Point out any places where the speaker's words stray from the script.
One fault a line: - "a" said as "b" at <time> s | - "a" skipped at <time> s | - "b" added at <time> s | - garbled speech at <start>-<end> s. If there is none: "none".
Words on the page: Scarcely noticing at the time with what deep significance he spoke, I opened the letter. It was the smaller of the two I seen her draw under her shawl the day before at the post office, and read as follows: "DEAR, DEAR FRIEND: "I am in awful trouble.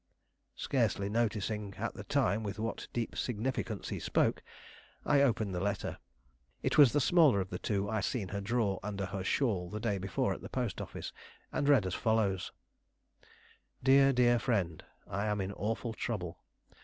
none